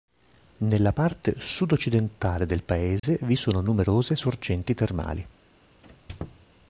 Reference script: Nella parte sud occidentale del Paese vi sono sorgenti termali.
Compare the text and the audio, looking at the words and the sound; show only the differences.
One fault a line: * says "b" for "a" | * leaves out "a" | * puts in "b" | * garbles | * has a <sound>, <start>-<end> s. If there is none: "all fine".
* has a dropout, 3.0-3.0 s
* puts in "numerose"
* has a squeak, 5.8-6.5 s